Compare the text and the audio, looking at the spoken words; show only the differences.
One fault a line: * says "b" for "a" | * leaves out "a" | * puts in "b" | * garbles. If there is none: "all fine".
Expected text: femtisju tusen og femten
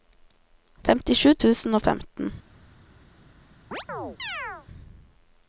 all fine